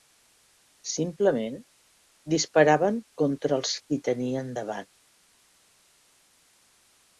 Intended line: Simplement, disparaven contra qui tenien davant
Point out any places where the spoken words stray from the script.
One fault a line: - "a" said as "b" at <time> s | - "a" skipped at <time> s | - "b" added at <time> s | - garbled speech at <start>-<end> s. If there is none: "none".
- "els" added at 3.6 s